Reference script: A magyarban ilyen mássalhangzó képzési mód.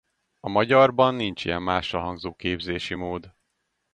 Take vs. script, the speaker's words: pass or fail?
fail